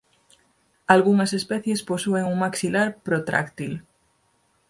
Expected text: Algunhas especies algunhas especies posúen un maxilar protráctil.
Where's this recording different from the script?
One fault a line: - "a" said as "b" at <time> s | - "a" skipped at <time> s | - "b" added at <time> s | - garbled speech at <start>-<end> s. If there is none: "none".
- "algunhas especies" skipped at 1.8 s